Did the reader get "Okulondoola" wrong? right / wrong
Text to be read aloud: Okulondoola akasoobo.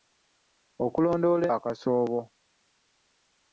right